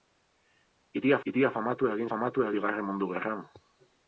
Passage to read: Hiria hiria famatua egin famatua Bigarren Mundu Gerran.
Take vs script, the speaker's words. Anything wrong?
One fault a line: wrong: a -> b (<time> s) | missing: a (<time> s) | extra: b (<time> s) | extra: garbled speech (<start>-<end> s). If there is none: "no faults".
no faults